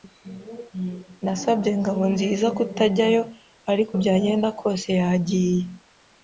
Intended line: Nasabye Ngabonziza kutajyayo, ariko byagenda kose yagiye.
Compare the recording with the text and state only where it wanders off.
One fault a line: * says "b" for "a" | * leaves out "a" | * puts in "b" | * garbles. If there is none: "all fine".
all fine